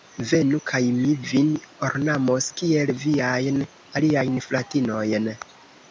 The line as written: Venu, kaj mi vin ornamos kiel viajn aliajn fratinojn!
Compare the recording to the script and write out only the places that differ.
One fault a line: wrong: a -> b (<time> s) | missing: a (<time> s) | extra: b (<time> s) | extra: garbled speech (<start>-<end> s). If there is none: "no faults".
no faults